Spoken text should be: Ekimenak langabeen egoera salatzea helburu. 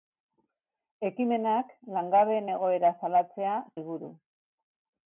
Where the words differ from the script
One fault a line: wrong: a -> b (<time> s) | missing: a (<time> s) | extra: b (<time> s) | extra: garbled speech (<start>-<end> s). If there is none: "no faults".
no faults